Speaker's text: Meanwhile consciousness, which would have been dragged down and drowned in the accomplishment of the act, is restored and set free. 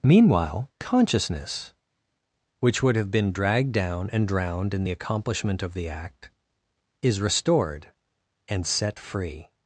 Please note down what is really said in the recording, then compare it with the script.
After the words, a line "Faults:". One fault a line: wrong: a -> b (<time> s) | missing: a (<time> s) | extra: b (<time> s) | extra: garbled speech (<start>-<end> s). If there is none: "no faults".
Meanwhile consciousness, which would have been dragged down and drowned in the accomplishment of the act, is restored and set free.
Faults:
no faults